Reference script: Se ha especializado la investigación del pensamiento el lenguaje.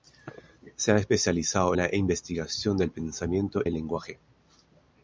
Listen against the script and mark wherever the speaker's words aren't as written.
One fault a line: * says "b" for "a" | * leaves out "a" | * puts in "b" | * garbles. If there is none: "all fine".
all fine